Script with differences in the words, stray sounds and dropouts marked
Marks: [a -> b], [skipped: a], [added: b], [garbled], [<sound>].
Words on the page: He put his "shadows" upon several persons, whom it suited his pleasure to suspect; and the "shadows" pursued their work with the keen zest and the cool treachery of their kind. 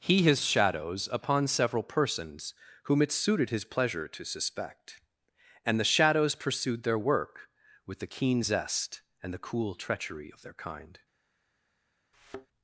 He [skipped: put] his "shadows" upon several persons, whom it suited his pleasure to suspect; and the "shadows" pursued their work with the keen zest and the cool treachery of their kind. [thud]